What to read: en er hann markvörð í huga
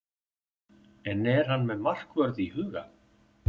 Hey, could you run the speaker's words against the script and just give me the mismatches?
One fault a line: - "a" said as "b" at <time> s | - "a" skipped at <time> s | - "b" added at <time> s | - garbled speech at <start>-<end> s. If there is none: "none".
- "með" added at 1.7 s